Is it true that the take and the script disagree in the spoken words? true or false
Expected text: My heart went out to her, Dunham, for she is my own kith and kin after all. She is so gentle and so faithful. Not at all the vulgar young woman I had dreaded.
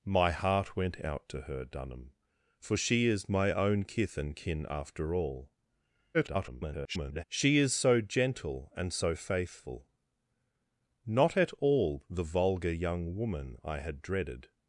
true